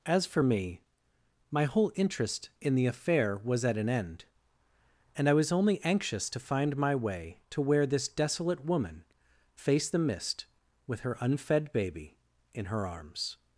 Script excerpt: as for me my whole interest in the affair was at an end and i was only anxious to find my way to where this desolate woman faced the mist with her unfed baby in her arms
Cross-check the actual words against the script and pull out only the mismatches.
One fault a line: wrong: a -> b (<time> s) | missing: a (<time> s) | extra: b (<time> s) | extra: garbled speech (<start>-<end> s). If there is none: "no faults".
no faults